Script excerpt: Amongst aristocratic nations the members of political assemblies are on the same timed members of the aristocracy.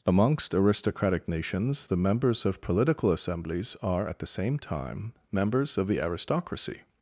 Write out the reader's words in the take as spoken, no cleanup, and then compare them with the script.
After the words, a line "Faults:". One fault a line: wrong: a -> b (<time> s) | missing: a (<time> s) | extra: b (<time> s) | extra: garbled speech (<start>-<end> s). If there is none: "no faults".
Amongst aristocratic nations the members of political assemblies are at the same time members of the aristocracy.
Faults:
wrong: on -> at (4.1 s)
wrong: timed -> time (4.6 s)